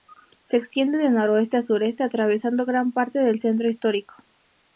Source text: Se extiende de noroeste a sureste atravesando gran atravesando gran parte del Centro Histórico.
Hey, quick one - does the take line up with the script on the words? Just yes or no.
no